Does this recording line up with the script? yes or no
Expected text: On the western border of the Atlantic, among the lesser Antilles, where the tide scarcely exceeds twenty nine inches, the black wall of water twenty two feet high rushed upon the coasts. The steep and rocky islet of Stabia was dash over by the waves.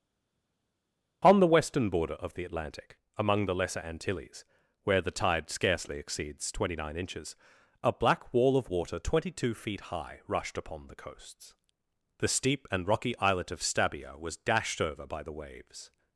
no